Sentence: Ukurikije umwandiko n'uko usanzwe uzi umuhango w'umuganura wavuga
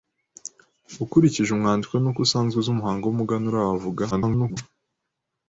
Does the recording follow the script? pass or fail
fail